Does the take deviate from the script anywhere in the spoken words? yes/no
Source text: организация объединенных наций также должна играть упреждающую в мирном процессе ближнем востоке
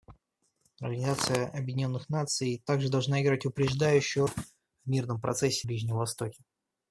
no